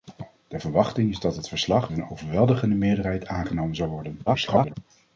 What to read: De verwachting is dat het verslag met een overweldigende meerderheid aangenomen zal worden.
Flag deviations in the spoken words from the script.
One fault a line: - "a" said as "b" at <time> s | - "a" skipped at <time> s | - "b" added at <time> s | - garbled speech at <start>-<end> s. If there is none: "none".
- "met" skipped at 1.9 s
- garbled speech at 4.3-4.8 s